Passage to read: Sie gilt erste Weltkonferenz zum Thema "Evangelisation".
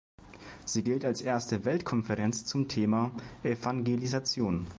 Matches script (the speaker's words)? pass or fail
fail